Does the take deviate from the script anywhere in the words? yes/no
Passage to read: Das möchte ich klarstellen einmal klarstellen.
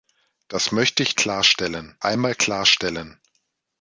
no